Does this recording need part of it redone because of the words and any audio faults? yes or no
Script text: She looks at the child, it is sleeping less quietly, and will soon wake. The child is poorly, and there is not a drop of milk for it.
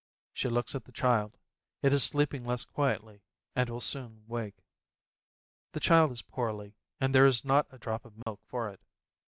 yes